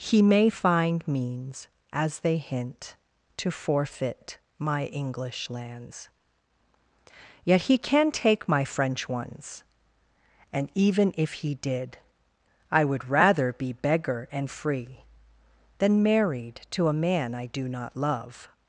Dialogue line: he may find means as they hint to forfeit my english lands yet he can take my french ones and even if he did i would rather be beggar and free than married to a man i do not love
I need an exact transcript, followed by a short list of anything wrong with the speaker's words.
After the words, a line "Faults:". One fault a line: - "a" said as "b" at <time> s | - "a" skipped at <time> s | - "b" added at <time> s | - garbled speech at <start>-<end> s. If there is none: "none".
he may find means as they hint to forfeit my english lands yet he can take my french ones and even if he did i would rather be beggar and free than married to a man i do not love
Faults:
none